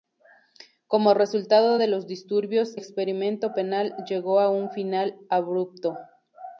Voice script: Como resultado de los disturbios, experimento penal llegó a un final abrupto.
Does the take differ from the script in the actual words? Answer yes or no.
no